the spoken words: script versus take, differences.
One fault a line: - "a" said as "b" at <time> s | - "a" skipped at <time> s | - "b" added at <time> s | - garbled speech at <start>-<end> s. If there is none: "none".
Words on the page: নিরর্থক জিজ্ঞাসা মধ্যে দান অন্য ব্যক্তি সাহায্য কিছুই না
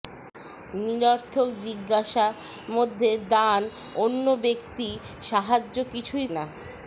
none